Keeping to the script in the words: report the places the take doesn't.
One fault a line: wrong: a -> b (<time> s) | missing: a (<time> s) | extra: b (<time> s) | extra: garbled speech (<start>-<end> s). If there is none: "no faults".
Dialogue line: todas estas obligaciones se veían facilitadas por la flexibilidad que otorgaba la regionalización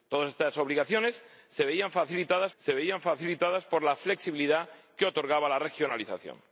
extra: se veían facilitadas (2.6 s)